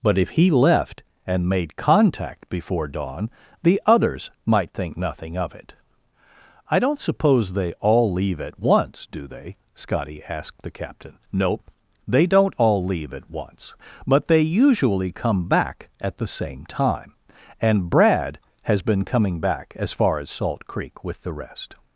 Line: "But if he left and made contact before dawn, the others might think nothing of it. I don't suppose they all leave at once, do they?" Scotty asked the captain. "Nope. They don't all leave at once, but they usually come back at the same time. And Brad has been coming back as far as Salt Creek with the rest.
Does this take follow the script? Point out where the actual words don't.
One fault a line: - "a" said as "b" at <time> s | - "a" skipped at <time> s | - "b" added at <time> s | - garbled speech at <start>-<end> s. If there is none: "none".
none